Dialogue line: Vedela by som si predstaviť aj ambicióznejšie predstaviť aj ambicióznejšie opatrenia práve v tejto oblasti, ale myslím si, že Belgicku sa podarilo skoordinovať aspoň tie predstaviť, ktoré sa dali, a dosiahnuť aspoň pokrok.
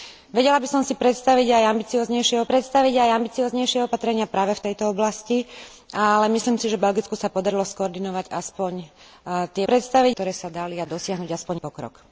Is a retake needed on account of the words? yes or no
no